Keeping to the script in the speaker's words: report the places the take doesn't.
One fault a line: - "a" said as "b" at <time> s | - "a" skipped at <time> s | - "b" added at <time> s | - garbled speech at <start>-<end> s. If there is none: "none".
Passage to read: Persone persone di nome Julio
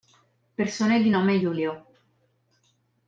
- "persone" skipped at 1.0 s